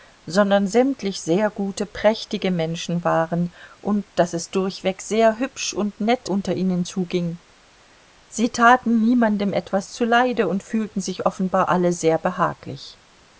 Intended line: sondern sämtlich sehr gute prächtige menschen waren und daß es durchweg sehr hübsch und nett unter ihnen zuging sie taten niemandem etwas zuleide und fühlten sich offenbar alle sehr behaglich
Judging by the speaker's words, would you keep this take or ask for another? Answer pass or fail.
pass